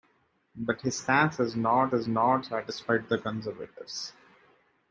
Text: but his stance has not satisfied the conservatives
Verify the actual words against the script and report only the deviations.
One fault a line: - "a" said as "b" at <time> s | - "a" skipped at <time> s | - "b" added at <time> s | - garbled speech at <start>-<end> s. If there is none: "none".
- "has not" added at 1.9 s